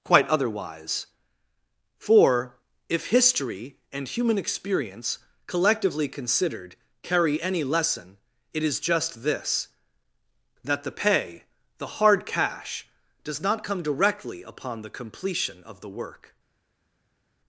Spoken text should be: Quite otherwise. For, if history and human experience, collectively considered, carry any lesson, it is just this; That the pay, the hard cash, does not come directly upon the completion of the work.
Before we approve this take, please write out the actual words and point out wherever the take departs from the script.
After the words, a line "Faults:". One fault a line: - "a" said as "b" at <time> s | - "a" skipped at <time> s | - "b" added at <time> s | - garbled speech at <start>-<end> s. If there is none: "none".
Quite otherwise. For, if history and human experience, collectively considered, carry any lesson, it is just this; That the pay, the hard cash, does not come directly upon the completion of the work.
Faults:
none